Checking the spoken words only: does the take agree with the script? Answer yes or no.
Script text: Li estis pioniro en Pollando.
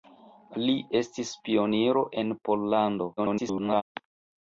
no